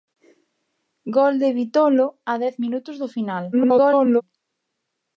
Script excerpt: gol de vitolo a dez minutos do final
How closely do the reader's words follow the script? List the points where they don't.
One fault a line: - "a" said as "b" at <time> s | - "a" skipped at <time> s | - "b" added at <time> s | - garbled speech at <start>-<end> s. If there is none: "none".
- garbled speech at 3.5-4.2 s